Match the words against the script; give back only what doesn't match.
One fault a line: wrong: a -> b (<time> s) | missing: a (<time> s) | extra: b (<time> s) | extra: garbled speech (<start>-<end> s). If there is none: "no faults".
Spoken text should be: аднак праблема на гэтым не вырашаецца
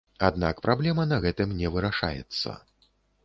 no faults